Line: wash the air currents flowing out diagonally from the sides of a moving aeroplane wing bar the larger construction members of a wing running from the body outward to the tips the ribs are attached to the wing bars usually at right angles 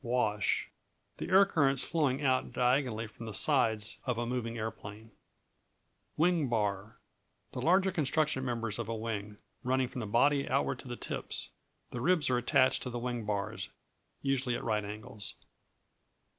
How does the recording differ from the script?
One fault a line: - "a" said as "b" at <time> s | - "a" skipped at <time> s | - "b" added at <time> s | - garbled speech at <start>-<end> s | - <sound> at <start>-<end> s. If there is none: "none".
none